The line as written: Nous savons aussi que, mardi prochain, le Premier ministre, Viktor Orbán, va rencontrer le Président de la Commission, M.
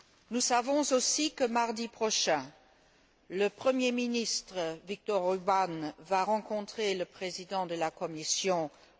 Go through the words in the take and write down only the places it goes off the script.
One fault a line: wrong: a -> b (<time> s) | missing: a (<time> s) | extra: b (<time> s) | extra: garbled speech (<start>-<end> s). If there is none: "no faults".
no faults